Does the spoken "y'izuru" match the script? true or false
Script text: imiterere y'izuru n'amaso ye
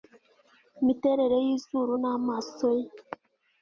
true